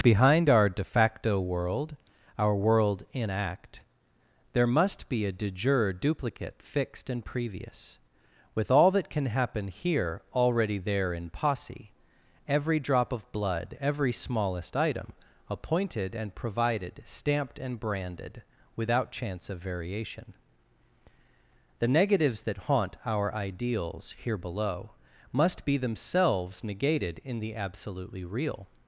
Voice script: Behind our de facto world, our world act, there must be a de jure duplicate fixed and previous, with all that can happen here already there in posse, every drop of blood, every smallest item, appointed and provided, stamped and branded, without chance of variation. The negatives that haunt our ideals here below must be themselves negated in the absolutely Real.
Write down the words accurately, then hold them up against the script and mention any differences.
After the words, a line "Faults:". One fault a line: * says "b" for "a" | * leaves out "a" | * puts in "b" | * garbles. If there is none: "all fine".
Behind our de facto world, our world in act, there must be a de jure duplicate fixed and previous, with all that can happen here already there in posse, every drop of blood, every smallest item, appointed and provided, stamped and branded, without chance of variation. The negatives that haunt our ideals here below must be themselves negated in the absolutely Real.
Faults:
* puts in "in"